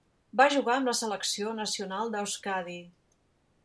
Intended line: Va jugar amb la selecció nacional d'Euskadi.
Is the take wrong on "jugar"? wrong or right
right